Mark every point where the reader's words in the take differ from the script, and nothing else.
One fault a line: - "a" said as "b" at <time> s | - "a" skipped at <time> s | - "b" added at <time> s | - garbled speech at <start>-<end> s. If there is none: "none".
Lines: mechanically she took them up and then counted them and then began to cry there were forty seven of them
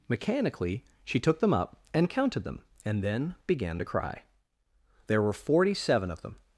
- "then" skipped at 2.1 s